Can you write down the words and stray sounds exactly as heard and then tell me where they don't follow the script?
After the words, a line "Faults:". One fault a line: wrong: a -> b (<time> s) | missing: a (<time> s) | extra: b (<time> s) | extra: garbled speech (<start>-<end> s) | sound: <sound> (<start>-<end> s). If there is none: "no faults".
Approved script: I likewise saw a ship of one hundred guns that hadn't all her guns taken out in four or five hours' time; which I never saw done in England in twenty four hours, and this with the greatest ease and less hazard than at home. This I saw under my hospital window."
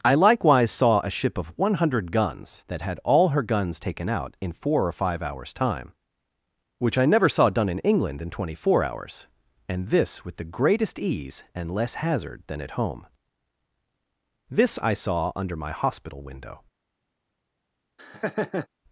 I likewise saw a ship of one hundred guns that had all her guns taken out in four or five hours' time; which I never saw done in England in twenty four hours, and this with the greatest ease and less hazard than at home. This I saw under my hospital window."
Faults:
wrong: hadn't -> had (2.8 s)
sound: laugh (18.0-18.7 s)